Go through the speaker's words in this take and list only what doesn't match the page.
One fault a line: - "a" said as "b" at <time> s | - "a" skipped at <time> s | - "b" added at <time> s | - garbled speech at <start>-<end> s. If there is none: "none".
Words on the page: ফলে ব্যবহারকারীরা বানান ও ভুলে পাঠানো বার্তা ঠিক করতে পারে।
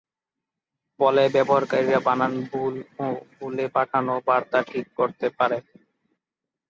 - "ভুল" added at 2.5 s